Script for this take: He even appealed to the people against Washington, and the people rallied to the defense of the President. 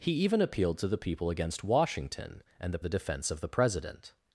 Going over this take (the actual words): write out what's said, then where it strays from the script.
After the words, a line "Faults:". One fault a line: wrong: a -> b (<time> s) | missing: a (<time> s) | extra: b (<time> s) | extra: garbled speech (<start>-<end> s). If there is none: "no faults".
He even appealed to the people against Washington, and the the defense of the President.
Faults:
missing: people rallied to (2.8 s)